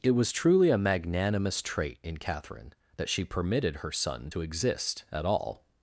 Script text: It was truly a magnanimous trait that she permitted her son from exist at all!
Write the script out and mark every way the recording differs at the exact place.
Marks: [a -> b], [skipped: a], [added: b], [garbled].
It was truly a magnanimous trait [added: in Catherine] that she permitted her son [from -> to] exist at all!